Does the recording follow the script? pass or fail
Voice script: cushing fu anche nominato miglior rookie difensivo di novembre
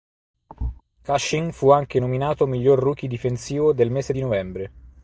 fail